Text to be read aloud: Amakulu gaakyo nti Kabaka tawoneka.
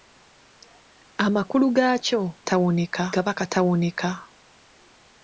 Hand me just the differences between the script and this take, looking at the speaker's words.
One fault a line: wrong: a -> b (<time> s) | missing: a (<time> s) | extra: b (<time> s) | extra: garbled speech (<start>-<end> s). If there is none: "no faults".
wrong: nti -> tawoneka (2.5 s)